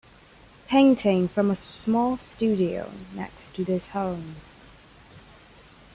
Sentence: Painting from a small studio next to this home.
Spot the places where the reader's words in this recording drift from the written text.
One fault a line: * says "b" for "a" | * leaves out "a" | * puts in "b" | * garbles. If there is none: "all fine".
all fine